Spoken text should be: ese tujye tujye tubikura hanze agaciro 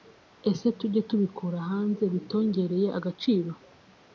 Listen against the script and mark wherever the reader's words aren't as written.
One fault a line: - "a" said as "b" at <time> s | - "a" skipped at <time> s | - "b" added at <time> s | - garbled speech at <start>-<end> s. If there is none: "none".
- "tujye" skipped at 1.0 s
- "bitongereye" added at 2.1 s